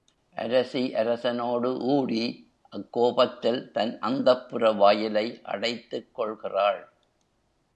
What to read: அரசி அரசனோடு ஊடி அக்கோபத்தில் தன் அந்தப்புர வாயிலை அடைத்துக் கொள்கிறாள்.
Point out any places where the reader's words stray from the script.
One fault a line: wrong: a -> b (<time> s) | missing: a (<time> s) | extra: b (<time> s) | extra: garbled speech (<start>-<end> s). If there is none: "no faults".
no faults